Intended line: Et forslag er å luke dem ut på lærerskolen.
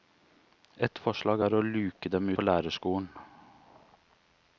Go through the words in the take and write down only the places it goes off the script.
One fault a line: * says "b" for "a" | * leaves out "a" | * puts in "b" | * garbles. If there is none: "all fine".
* leaves out "ut"